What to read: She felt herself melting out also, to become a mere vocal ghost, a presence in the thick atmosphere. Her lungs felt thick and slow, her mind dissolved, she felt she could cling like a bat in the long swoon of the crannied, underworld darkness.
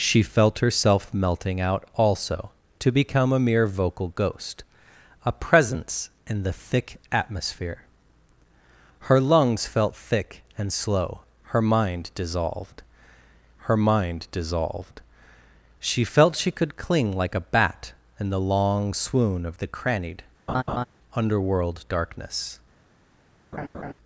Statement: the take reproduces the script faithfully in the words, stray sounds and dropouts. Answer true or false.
false